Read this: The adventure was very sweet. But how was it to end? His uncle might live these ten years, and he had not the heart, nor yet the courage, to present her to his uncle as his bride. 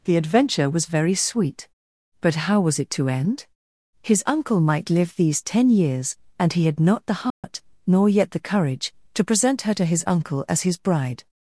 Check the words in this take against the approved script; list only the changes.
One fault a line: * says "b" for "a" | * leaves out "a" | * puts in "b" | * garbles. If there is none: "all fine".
all fine